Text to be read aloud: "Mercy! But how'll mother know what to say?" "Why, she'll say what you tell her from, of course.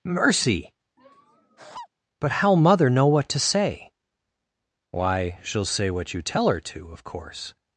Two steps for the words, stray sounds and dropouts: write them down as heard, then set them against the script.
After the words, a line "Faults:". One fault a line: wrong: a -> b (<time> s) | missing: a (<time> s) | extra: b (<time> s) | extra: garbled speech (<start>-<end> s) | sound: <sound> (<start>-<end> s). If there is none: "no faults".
"Mercy! But how'll mother know what to say?" "Why, she'll say what you tell her to, of course.
Faults:
sound: laugh (1.0-1.9 s)
wrong: from -> to (6.6 s)